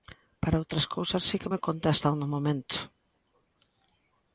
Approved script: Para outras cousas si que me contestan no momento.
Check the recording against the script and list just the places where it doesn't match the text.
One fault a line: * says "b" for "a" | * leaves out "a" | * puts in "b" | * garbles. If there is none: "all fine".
all fine